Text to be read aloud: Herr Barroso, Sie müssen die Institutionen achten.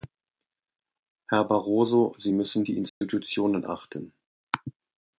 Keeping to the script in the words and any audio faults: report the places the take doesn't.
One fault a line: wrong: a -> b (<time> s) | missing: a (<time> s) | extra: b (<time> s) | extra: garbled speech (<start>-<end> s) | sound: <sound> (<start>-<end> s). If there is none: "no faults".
sound: dropout (2.9-3.0 s)